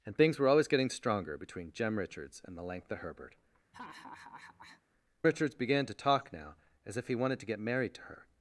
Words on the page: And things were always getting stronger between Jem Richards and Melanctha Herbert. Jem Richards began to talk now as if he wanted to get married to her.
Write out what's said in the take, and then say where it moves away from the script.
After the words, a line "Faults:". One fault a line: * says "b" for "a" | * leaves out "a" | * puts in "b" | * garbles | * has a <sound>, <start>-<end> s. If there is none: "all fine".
And things were always getting stronger between Jem Richards and Melanctha Herbert. Richards began to talk now as if he wanted to get married to her.
Faults:
* leaves out "Jem"
* has a laugh, 3.7-4.8 s